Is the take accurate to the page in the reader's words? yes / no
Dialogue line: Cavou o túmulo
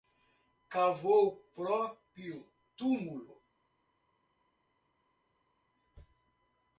no